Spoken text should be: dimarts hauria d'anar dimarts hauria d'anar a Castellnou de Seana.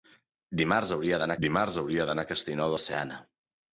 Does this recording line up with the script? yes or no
yes